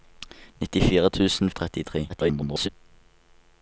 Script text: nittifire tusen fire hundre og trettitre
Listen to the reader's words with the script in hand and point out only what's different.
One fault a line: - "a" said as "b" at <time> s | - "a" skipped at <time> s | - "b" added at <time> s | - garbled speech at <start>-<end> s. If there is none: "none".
- "fire hundre" skipped at 1.5 s
- garbled speech at 2.1-2.7 s